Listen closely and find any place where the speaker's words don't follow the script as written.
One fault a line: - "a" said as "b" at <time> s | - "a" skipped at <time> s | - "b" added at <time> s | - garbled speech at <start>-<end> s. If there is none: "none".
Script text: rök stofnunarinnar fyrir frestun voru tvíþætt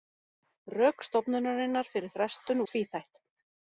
- "voru" skipped at 2.6 s